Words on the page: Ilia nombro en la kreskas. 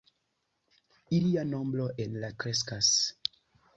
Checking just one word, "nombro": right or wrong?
right